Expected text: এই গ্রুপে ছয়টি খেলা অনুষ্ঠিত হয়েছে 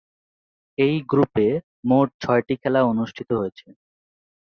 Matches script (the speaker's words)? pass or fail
fail